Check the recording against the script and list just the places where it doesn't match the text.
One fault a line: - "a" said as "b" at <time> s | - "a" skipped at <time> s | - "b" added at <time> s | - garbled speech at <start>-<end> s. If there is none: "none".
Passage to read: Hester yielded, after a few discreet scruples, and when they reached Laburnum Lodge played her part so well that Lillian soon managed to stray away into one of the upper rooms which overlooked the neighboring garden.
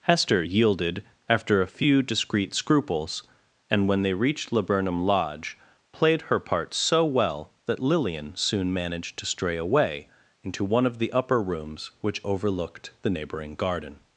none